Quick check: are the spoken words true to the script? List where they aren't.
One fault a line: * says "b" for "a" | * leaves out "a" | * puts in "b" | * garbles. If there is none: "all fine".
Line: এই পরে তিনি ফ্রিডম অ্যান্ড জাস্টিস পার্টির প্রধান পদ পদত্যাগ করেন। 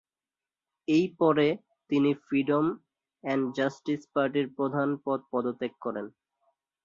all fine